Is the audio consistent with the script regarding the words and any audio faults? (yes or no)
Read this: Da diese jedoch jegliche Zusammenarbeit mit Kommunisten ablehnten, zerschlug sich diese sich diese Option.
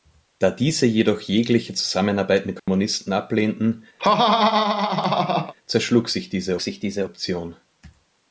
no